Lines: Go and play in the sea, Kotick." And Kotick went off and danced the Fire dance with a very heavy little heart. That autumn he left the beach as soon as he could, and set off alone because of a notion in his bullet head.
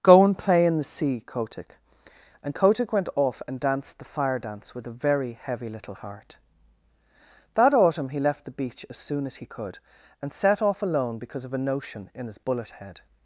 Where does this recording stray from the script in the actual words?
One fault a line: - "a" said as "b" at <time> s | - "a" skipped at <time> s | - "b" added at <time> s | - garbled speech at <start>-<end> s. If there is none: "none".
none